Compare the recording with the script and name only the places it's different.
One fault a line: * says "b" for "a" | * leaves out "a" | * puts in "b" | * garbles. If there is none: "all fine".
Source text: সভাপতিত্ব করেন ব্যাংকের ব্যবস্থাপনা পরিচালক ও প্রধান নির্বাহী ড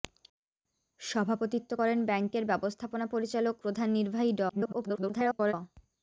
* leaves out "ও"
* garbles